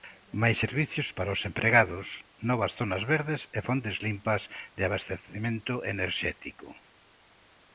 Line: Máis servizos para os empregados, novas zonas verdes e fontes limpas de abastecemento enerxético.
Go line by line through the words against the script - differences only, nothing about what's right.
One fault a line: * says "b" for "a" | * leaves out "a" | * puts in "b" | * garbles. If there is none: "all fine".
all fine